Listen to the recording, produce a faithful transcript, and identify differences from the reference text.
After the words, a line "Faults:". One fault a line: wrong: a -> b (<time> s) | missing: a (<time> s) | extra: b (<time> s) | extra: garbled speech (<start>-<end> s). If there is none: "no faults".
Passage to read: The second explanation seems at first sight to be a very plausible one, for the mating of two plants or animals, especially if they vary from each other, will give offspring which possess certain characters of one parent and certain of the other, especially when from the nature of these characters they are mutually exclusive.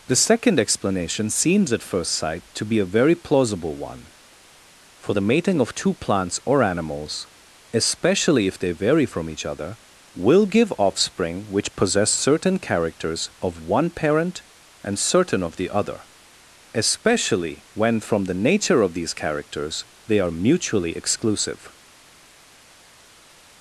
The second explanation seems at first sight to be a very plausible one, for the mating of two plants or animals, especially if they vary from each other, will give offspring which possess certain characters of one parent and certain of the other, especially when from the nature of these characters they are mutually exclusive.
Faults:
no faults